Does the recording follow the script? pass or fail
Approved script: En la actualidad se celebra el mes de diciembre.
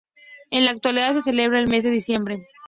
pass